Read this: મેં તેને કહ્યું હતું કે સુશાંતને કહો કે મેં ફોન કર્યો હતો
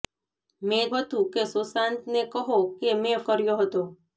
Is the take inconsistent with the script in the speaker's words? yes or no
yes